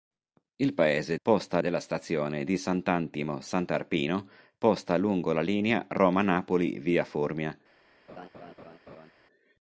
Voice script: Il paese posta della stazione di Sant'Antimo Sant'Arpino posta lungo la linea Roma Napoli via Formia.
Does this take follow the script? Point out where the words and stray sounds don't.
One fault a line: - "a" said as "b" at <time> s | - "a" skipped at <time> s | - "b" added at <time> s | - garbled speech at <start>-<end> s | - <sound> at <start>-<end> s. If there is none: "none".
- laugh at 8.1-9.1 s